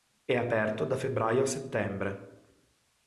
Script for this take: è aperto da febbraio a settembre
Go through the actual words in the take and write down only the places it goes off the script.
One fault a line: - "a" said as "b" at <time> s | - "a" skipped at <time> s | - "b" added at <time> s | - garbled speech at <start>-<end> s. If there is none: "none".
none